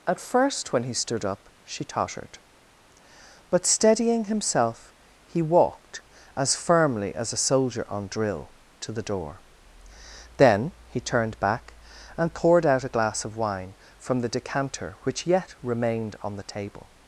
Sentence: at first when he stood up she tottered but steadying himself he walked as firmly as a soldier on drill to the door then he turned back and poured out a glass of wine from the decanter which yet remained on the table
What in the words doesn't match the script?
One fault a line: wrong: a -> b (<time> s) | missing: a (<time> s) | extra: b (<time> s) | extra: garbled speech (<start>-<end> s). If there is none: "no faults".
no faults